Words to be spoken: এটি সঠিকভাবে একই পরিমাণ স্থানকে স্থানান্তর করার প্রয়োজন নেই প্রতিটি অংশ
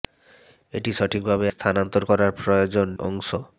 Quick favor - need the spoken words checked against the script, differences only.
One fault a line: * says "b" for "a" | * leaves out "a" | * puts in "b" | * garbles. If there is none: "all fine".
* leaves out "একই পরিমাণ স্থানকে"
* leaves out "নেই প্রতিটি"